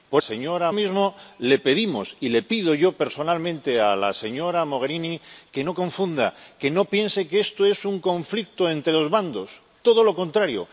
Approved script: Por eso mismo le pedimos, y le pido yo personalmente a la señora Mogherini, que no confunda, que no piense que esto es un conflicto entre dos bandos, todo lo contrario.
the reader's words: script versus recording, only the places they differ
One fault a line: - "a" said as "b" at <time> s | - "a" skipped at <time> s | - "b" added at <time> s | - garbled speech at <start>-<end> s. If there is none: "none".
- "eso" said as "señora" at 0.2 s